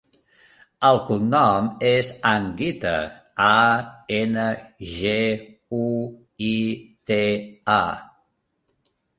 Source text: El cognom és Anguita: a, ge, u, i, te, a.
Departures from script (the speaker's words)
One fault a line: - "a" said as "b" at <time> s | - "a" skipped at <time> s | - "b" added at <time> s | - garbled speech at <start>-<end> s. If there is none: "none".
- "ena" added at 4.2 s